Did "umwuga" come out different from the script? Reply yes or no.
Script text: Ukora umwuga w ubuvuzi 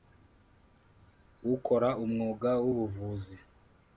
no